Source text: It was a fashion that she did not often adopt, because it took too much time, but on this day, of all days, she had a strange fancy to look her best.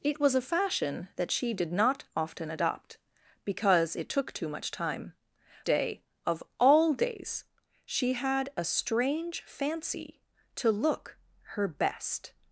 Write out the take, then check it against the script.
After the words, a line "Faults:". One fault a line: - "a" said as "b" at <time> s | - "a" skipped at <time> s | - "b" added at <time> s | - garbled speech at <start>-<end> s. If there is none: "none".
It was a fashion that she did not often adopt, because it took too much time, day, of all days, she had a strange fancy to look her best.
Faults:
- "but on this" skipped at 5.1 s